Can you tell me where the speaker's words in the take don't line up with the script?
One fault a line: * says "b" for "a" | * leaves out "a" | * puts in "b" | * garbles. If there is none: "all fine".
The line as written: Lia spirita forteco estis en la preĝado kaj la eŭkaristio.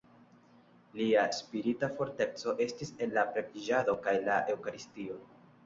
all fine